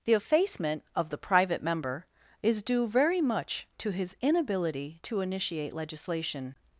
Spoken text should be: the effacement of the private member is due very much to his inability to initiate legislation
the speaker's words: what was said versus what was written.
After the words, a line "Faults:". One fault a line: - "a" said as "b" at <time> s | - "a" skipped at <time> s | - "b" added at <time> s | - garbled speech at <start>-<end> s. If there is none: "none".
the effacement of the private member is due very much to his inability to initiate legislation
Faults:
none